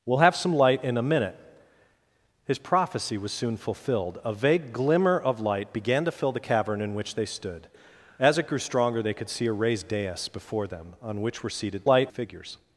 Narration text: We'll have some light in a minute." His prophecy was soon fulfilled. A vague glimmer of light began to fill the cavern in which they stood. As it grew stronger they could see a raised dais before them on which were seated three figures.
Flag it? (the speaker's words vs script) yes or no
yes